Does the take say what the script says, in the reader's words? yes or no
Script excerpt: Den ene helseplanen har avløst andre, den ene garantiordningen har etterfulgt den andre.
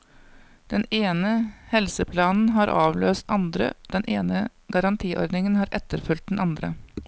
yes